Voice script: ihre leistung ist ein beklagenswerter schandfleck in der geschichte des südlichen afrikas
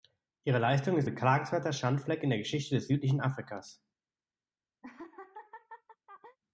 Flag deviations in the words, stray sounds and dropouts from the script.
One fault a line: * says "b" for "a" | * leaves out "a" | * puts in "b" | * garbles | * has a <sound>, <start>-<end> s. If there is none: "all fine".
* leaves out "ein"
* has a laugh, 4.8-6.4 s